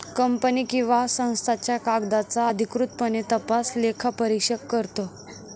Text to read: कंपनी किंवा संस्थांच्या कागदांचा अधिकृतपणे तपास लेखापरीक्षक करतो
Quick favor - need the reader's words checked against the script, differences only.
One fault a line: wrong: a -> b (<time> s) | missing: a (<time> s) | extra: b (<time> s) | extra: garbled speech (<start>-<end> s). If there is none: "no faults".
no faults